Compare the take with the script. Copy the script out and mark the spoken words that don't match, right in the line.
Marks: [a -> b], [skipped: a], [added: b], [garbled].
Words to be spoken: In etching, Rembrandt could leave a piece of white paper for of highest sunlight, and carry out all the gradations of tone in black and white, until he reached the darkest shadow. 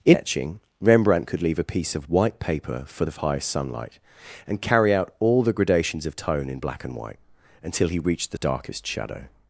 In etching, Rembrandt could leave a piece of white paper for of highest sunlight, and carry out all the gradations of tone in black and white, until he reached the darkest shadow.